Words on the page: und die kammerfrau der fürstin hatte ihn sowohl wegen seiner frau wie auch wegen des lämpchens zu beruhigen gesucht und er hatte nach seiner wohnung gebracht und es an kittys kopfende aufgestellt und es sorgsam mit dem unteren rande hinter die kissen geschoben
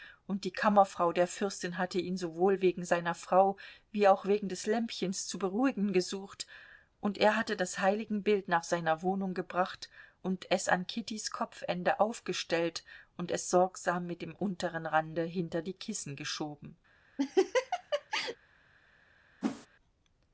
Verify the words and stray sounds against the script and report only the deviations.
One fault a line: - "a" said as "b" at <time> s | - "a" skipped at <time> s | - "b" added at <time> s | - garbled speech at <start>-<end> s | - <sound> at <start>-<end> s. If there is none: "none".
- "das heiligenbild" added at 7.5 s
- laugh at 17.2-18.4 s
- whoosh at 19.4-19.7 s